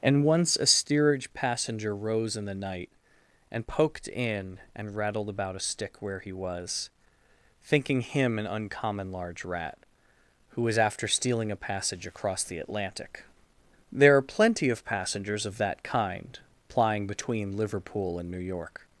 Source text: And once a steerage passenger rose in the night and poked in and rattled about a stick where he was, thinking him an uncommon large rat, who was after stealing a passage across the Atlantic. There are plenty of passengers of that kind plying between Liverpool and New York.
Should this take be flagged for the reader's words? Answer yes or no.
no